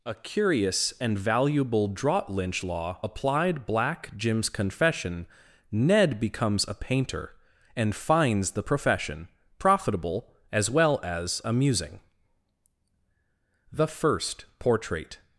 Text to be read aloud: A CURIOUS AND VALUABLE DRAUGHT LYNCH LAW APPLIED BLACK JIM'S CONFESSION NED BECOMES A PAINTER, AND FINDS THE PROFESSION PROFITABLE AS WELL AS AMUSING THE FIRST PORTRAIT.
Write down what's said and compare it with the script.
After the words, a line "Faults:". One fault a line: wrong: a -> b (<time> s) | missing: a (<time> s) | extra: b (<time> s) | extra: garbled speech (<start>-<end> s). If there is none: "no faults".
A CURIOUS AND VALUABLE DRAUGHT LYNCH LAW APPLIED BLACK JIM'S CONFESSION NED BECOMES A PAINTER, AND FINDS THE PROFESSION PROFITABLE AS WELL AS AMUSING THE FIRST PORTRAIT.
Faults:
no faults